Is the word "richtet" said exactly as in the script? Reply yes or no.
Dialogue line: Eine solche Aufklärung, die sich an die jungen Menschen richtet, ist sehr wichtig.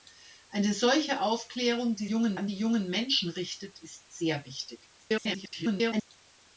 yes